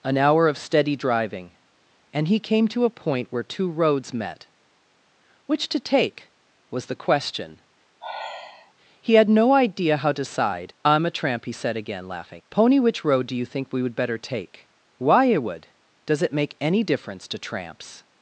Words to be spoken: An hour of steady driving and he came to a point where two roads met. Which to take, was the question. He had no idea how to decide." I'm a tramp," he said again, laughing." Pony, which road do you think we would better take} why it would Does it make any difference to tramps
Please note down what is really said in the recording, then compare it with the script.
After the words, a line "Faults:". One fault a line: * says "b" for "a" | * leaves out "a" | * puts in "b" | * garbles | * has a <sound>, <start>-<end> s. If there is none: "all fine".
An hour of steady driving and he came to a point where two roads met. Which to take, was the question. He had no idea how to decide." I'm a tramp," he said again, laughing." Pony, which road do you think we would better take} why it would Does it make any difference to tramps
Faults:
* has a sigh, 8.0-8.7 s